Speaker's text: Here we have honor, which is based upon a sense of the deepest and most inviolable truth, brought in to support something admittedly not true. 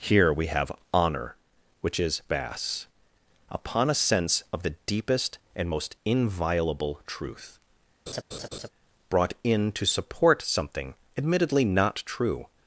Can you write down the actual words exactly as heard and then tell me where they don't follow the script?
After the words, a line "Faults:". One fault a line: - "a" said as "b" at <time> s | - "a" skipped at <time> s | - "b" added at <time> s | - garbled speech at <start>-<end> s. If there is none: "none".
Here we have honor, which is bas upon a sense of the deepest and most inviolable truth, brought in to support something admittedly not true.
Faults:
- "based" said as "bas" at 2.3 s